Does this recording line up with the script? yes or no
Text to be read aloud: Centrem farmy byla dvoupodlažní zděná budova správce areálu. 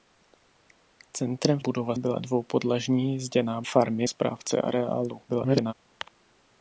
no